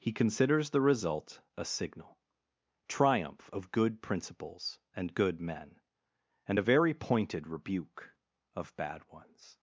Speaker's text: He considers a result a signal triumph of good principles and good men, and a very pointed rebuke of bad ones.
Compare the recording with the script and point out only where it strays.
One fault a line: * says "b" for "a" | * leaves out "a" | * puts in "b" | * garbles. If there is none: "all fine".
* says "the" for "a"